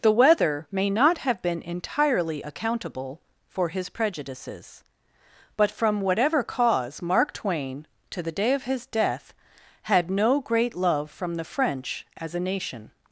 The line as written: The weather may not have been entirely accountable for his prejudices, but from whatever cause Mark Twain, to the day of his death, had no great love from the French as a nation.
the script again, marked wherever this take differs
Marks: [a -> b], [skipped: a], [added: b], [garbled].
The weather may not have been entirely accountable for his prejudices, but from whatever cause Mark Twain, to the day of his death, had no great love from the French as a nation.